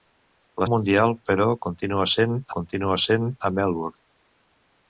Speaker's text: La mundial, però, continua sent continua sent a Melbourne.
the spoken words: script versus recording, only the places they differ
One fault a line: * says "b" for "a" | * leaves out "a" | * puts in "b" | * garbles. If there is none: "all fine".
all fine